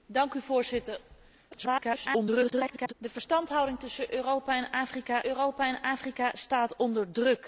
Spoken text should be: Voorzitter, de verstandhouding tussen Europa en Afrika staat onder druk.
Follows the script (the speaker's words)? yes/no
no